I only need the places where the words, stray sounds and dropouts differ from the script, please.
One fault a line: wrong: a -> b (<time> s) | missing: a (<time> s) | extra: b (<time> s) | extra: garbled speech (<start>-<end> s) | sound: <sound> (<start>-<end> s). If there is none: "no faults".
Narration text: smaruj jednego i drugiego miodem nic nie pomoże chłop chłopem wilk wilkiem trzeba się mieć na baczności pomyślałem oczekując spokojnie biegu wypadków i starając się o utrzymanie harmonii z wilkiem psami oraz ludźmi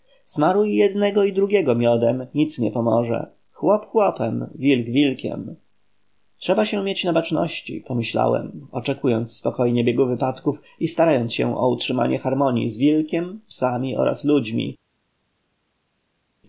no faults